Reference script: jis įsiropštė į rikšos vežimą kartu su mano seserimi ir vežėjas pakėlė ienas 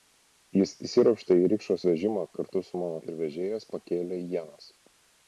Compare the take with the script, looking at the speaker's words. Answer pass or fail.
fail